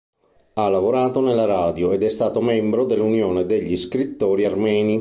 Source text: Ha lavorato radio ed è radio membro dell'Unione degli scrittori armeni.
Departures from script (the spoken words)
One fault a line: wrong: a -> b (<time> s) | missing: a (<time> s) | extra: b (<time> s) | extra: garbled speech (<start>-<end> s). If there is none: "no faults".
extra: nella (1.2 s)
wrong: radio -> stato (2.1 s)